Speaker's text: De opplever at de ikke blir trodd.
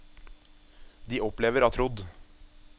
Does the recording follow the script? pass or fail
fail